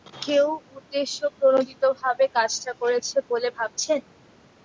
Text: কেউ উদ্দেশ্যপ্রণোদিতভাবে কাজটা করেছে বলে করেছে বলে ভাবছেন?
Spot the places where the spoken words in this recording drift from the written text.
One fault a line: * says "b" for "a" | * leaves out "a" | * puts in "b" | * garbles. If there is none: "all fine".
* leaves out "করেছে বলে"